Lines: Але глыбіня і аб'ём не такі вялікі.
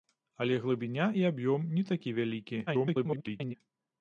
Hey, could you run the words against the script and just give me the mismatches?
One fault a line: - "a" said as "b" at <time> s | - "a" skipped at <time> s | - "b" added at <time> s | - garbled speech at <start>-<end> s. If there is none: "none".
- garbled speech at 2.7-3.5 s